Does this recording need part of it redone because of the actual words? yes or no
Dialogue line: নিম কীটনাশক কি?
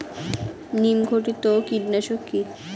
yes